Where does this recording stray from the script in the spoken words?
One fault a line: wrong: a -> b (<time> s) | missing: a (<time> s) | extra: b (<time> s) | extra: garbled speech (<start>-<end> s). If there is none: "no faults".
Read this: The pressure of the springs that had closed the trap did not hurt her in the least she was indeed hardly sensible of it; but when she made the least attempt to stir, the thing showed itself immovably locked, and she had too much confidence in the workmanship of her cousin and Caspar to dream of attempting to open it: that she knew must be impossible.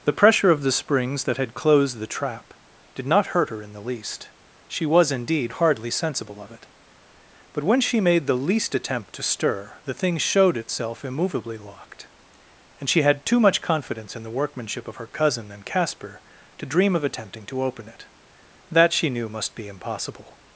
no faults